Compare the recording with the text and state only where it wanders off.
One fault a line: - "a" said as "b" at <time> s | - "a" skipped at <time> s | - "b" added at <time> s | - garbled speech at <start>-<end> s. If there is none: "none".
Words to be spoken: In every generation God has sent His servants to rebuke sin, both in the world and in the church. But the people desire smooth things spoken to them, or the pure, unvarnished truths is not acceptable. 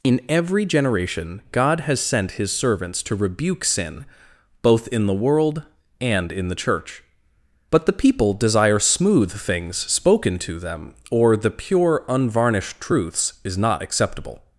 none